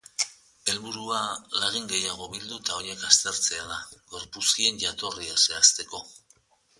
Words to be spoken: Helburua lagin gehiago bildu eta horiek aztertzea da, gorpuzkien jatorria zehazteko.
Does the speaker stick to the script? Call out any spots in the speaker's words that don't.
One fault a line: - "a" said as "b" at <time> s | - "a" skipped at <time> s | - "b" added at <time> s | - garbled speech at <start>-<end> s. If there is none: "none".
none